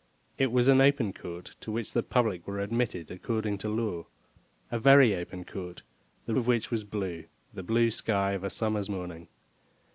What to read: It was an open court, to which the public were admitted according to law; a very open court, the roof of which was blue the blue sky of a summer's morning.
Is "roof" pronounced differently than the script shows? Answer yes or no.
yes